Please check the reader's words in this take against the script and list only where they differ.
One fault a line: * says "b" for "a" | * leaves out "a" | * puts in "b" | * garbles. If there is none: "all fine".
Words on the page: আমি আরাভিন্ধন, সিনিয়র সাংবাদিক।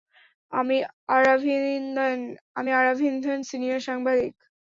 all fine